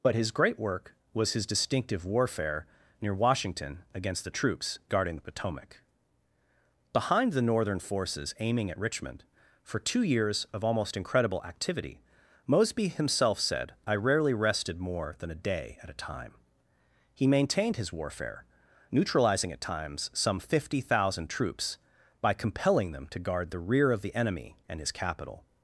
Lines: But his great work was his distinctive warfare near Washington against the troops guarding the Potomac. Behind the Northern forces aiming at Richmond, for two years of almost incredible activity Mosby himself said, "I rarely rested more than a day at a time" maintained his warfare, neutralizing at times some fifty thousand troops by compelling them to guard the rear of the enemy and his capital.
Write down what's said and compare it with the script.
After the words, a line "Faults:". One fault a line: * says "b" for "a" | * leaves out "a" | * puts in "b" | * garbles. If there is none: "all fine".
But his great work was his distinctive warfare near Washington against the troops guarding the Potomac. Behind the Northern forces aiming at Richmond, for two years of almost incredible activity Mosby himself said, "I rarely rested more than a day at a time" he maintained his warfare, neutralizing at times some fifty thousand troops by compelling them to guard the rear of the enemy and his capital.
Faults:
* puts in "he"